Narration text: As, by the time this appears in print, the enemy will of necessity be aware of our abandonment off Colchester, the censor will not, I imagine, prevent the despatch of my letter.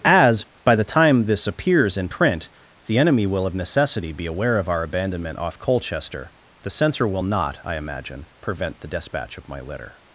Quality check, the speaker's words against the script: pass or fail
pass